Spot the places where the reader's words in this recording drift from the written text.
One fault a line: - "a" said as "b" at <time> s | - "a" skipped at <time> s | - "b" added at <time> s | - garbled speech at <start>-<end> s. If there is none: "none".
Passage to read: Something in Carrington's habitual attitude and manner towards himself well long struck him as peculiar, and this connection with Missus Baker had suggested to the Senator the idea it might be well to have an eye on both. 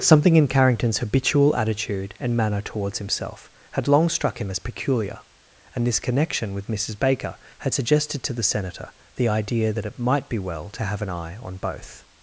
- "well" said as "had" at 3.7 s
- "that" added at 9.7 s